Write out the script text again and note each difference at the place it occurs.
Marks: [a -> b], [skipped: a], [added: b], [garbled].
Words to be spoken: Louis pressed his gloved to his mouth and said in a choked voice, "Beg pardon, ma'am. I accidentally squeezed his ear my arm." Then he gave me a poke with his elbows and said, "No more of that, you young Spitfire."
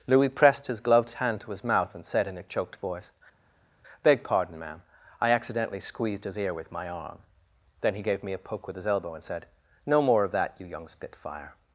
Louis pressed his gloved [added: hand] to his mouth and said in a choked voice, "Beg pardon, ma'am. I accidentally squeezed his ear [added: with] my arm." Then he gave me a poke with his [elbows -> elbow] and said, "No more of that, you young Spitfire."